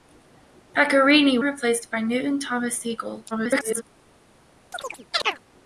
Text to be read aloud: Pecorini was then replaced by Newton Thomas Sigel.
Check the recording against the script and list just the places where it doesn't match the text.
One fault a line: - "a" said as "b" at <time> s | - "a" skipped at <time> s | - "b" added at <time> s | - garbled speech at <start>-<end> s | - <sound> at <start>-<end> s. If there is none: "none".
- "was then" skipped at 1.4 s
- garbled speech at 3.3-3.8 s
- chirp at 4.7-5.4 s